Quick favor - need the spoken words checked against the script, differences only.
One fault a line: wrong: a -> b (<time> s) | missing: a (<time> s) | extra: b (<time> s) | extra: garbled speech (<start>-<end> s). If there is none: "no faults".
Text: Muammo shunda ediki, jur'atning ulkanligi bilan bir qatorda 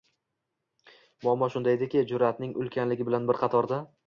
no faults